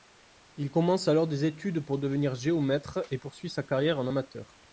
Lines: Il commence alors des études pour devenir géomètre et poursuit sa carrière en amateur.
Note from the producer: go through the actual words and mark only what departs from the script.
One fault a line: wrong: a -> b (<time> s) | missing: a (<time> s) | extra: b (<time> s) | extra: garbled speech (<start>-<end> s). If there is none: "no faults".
no faults